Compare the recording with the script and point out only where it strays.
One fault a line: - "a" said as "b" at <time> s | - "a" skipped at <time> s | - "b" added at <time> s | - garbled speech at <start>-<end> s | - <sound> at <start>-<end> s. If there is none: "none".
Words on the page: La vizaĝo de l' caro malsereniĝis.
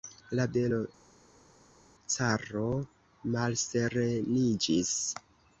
- "vizaĝo" skipped at 0.5 s